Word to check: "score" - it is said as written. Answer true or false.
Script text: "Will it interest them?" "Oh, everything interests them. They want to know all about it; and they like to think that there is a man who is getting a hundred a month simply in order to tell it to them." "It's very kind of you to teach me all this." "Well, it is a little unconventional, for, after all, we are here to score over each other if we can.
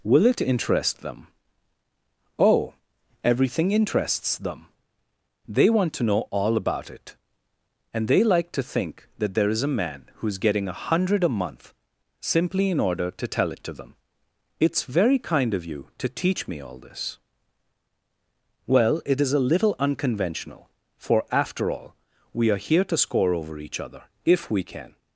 true